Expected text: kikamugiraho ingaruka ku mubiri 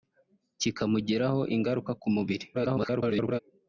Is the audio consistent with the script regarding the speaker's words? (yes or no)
no